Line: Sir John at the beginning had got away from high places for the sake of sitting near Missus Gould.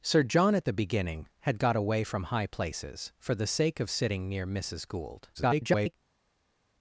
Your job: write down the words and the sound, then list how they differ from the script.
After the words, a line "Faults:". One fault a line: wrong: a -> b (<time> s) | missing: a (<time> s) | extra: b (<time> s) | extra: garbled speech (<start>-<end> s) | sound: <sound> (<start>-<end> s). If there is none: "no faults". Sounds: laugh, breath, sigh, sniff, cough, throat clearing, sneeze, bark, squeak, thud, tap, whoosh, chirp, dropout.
Sir John at the beginning had got away from high places for the sake of sitting near Missus Gould. [garbled]
Faults:
extra: garbled speech (5.3-5.9 s)